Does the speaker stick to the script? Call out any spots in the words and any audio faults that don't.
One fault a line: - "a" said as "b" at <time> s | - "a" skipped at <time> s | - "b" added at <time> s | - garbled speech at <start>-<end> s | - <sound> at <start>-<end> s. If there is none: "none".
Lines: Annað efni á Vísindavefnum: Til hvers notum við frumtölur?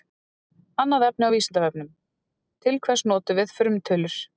none